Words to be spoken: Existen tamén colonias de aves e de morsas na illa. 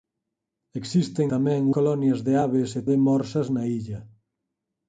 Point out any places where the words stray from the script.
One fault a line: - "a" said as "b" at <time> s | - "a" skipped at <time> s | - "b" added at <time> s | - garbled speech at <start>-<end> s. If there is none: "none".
none